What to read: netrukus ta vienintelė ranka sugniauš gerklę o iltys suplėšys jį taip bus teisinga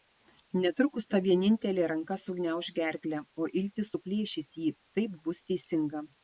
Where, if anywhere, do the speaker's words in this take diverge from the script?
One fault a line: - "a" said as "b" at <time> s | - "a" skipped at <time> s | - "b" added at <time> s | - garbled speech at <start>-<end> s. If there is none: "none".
none